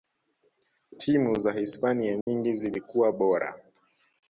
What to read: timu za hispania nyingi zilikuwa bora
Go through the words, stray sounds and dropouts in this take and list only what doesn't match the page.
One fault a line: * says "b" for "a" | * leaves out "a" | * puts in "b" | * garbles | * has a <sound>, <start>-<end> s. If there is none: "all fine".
* has a dropout, 2.2-2.3 s